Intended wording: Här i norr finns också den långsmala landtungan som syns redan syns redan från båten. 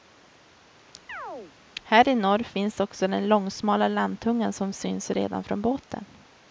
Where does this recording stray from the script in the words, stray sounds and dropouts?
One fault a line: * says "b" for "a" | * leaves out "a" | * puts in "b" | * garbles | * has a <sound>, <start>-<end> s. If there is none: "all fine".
* has a chirp, 1.1-1.5 s
* leaves out "syns redan"